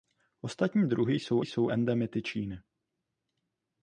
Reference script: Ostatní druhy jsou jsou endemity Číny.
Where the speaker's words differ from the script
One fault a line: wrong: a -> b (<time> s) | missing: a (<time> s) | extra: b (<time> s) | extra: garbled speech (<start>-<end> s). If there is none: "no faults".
no faults